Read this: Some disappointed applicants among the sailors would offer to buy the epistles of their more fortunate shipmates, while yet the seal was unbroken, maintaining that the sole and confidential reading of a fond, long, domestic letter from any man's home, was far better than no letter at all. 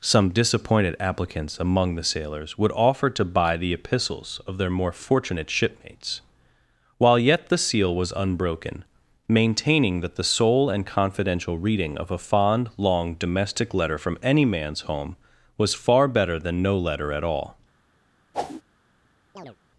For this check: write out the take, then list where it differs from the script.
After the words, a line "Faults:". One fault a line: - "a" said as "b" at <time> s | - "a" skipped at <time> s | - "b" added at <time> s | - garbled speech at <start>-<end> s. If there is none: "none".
Some disappointed applicants among the sailors would offer to buy the epistles of their more fortunate shipmates, while yet the seal was unbroken, maintaining that the sole and confidential reading of a fond, long, domestic letter from any man's home, was far better than no letter at all.
Faults:
none